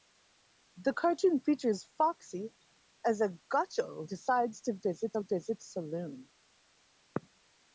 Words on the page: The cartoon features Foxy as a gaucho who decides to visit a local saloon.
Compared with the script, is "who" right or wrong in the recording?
wrong